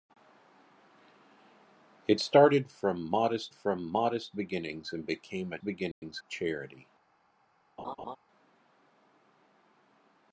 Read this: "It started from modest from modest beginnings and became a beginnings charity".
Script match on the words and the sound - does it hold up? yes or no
no